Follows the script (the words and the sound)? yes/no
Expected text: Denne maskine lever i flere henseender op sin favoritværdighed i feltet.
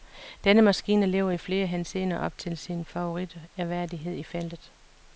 no